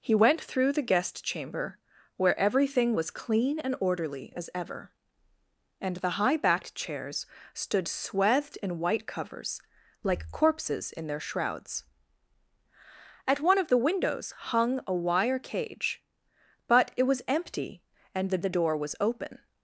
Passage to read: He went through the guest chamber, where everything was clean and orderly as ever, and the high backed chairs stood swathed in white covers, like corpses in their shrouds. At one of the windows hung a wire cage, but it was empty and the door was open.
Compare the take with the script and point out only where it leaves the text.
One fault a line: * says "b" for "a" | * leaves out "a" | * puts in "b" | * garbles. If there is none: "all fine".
* puts in "the"